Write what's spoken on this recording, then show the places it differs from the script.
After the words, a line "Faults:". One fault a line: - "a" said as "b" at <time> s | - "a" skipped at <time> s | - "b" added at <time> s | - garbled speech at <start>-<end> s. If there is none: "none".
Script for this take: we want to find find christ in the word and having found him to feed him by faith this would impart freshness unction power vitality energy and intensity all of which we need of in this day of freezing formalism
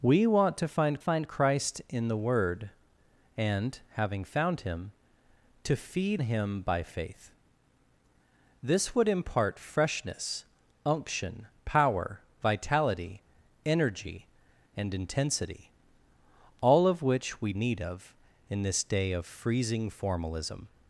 we want to find find christ in the word and having found him to feed him by faith this would impart freshness unction power vitality energy and intensity all of which we need of in this day of freezing formalism
Faults:
none